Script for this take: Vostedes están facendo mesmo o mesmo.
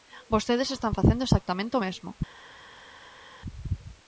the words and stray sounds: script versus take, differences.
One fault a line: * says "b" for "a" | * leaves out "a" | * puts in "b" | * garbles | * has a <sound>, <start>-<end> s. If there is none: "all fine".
* says "exactamente" for "mesmo"